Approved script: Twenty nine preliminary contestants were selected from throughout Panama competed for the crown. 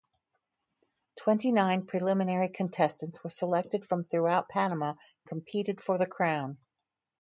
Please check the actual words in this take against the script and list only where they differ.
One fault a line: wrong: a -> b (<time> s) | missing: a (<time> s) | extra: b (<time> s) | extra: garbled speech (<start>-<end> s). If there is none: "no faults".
no faults